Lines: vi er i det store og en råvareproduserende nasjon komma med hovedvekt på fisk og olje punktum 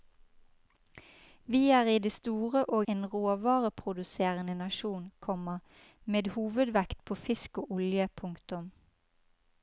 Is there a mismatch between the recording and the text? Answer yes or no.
no